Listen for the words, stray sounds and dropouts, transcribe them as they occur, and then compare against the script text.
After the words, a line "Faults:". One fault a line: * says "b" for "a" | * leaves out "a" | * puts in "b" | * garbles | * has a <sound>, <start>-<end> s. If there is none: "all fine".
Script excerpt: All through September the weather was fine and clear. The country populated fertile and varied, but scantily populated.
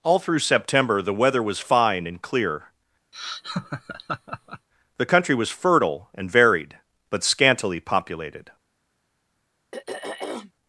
All through September the weather was fine and clear. The country was fertile and varied, but scantily populated.
Faults:
* has a laugh, 3.1-4.7 s
* says "was" for "populated"
* has a throat clearing, 9.7-10.5 s